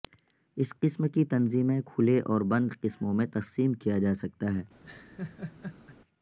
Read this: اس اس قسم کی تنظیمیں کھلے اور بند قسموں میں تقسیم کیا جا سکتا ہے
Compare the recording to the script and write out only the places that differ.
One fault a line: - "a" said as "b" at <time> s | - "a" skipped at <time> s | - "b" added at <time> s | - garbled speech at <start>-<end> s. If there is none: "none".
- "اس" skipped at 0.7 s